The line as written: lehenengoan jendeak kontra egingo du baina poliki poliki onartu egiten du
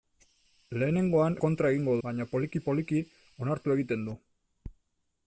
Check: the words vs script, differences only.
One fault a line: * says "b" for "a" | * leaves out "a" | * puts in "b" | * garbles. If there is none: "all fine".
* leaves out "jendeak"
* leaves out "du"